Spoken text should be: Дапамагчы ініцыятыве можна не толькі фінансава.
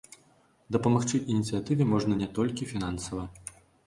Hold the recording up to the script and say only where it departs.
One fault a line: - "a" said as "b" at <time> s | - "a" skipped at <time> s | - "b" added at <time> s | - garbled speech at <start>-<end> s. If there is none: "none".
none